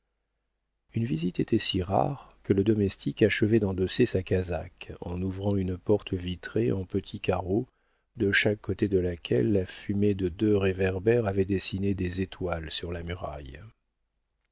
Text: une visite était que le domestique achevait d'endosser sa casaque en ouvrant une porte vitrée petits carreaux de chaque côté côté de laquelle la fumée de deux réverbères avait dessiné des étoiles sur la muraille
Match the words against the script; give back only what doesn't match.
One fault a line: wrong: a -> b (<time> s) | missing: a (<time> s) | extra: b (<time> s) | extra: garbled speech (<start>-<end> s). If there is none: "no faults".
extra: si rare (1.6 s)
extra: en (6.7 s)
missing: côté (8.9 s)